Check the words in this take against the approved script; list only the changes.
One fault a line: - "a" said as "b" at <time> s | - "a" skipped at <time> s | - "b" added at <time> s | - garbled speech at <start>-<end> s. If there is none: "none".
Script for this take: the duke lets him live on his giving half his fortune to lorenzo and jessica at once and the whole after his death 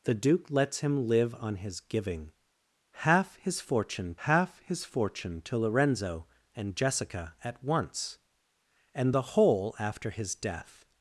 - "half his fortune" added at 4.3 s